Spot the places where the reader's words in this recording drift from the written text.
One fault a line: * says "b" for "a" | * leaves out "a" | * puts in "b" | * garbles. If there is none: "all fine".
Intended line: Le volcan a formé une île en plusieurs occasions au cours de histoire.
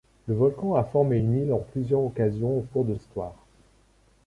all fine